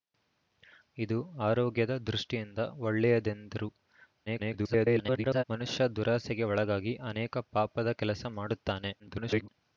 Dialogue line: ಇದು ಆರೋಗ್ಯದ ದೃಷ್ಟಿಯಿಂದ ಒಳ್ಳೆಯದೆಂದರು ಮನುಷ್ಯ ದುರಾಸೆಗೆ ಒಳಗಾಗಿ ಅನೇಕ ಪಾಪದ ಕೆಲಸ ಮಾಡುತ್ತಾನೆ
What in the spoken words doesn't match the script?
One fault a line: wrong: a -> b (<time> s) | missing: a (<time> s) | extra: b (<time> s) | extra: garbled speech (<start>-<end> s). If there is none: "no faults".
extra: garbled speech (4.3-5.4 s)
extra: garbled speech (9.0-9.5 s)